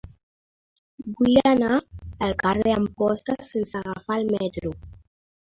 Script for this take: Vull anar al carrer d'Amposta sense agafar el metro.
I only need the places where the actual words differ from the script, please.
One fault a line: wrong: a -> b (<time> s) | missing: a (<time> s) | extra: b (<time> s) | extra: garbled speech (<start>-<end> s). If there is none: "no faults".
no faults